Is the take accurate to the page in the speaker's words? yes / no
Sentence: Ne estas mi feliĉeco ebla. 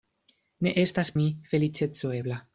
yes